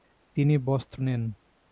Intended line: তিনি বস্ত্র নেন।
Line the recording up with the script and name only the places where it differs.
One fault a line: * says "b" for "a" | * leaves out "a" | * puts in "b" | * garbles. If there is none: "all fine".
all fine